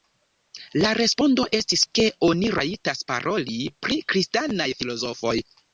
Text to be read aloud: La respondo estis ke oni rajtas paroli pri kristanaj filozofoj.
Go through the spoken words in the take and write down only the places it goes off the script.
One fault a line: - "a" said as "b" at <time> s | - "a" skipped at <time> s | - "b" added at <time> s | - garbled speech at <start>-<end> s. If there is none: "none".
none